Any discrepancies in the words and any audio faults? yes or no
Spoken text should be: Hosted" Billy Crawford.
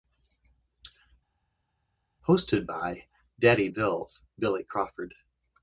yes